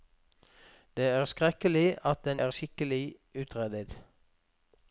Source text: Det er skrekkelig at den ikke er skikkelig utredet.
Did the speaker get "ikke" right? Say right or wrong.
wrong